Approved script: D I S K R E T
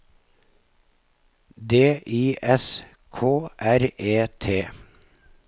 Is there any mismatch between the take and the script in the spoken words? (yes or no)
no